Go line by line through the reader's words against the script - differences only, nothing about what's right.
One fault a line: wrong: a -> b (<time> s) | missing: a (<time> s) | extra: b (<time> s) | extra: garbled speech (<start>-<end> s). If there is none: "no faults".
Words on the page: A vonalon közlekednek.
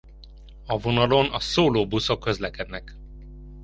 extra: a szóló buszok (1.2 s)